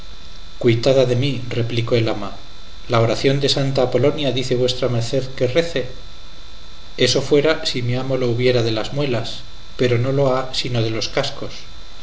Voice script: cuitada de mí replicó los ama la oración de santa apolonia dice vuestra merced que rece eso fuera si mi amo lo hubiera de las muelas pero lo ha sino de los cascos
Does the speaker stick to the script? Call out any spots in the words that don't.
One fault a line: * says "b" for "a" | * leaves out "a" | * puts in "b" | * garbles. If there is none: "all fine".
* says "el" for "los"
* puts in "no"